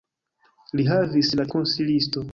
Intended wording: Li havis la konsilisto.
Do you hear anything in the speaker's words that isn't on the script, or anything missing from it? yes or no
no